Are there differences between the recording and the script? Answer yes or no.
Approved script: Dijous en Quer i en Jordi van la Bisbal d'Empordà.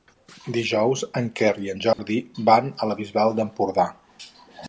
yes